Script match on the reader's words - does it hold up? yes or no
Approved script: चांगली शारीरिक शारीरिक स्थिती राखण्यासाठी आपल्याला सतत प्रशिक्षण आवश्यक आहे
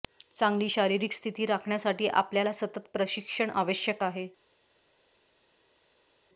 no